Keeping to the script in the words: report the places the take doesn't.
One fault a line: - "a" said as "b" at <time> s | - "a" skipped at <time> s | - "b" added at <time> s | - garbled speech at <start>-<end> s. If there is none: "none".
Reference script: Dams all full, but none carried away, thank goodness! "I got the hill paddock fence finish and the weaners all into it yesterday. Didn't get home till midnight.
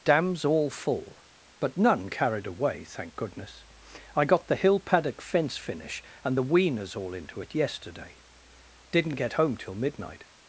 none